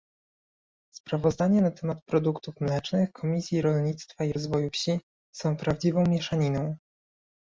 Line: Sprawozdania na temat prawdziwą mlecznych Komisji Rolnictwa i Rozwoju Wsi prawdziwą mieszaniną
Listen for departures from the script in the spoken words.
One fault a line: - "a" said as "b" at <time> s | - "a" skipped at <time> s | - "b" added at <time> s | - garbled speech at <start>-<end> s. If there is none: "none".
- "prawdziwą" said as "produktów" at 2.0 s
- "są" added at 5.3 s